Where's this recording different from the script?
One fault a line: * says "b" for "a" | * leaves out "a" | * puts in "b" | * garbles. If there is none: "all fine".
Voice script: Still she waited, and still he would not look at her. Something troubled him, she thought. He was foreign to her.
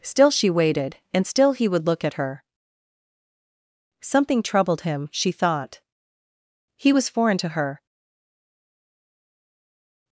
* leaves out "not"